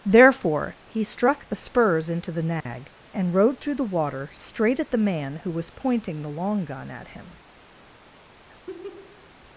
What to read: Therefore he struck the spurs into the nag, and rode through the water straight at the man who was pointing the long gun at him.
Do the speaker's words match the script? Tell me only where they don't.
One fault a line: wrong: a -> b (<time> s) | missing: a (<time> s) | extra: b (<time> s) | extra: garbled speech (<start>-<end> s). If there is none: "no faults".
no faults